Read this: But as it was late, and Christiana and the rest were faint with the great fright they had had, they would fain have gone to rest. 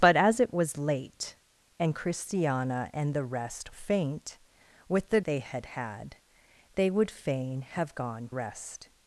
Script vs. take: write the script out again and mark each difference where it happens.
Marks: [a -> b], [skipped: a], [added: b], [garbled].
But as it was late, and Christiana and the rest [skipped: were] faint with the [skipped: great fright] they had had, they would fain have gone [skipped: to] rest.